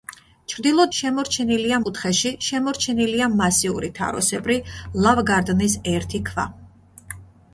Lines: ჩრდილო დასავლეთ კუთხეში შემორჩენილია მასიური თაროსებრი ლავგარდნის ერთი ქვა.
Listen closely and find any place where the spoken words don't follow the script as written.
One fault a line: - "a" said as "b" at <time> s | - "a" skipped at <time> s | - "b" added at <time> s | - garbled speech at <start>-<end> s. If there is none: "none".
- "დასავლეთ" said as "შემორჩენილია" at 1.0 s